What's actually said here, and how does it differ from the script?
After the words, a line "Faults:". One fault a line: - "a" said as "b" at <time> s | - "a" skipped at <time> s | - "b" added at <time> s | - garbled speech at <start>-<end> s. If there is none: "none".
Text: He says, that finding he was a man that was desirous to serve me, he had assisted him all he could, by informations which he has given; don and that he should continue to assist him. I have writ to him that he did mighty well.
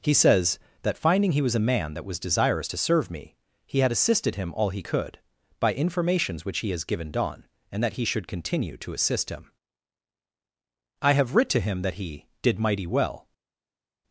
He says, that finding he was a man that was desirous to serve me, he had assisted him all he could, by informations which he has given; don and that he should continue to assist him. I have writ to him that he did mighty well.
Faults:
none